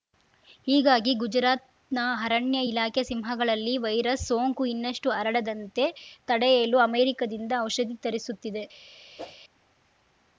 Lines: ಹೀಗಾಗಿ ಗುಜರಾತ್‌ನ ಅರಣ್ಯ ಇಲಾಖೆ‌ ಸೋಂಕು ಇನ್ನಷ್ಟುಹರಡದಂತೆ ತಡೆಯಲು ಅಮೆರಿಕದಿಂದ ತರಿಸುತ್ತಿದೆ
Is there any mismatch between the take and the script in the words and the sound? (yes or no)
yes